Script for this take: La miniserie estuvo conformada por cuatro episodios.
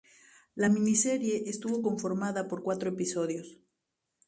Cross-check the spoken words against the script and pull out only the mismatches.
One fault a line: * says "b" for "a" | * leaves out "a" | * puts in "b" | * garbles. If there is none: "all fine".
all fine